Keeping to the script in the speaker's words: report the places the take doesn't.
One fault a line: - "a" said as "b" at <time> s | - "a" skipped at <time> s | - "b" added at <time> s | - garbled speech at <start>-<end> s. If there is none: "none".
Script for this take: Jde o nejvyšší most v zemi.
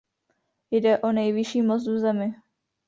none